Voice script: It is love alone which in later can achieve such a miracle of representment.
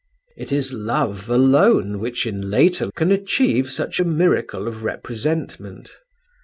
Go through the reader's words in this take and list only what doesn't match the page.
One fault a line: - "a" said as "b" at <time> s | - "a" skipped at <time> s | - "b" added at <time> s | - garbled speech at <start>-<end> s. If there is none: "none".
none